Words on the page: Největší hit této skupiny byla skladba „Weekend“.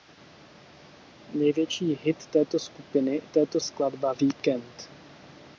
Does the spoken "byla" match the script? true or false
false